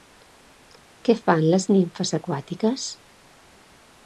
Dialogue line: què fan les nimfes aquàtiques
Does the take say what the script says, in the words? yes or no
yes